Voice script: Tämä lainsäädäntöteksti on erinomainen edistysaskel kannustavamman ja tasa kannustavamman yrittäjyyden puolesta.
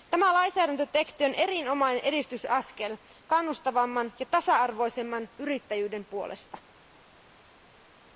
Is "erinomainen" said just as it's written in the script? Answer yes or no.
yes